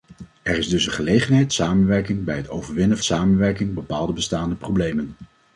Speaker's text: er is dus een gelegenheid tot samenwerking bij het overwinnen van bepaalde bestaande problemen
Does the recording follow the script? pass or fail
fail